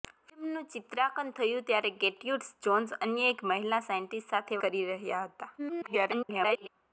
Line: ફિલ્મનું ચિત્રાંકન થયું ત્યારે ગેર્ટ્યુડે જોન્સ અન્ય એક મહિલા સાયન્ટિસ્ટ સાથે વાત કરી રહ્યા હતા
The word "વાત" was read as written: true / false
false